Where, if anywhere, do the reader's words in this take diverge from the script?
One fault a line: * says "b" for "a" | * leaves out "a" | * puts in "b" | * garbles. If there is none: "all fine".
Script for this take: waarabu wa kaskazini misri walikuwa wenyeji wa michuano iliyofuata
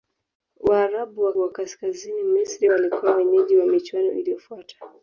* puts in "wa"